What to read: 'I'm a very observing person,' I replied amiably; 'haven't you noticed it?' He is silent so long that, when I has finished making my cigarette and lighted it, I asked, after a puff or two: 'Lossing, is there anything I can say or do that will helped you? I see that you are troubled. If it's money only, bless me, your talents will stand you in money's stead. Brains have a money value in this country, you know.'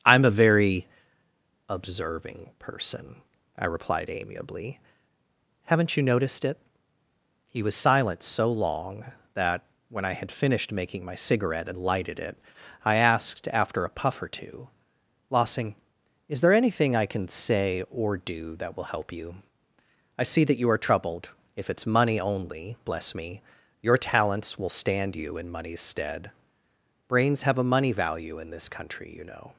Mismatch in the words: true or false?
true